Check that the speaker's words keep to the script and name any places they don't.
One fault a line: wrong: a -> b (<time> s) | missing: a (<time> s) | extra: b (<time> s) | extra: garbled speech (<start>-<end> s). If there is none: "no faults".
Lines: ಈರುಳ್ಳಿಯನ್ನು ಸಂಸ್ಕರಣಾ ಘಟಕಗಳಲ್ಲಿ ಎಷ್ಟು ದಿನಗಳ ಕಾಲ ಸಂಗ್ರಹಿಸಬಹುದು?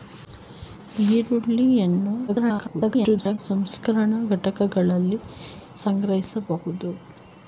extra: garbled speech (2.3-3.4 s)
missing: ಎಷ್ಟು ದಿನಗಳ ಕಾಲ (5.2 s)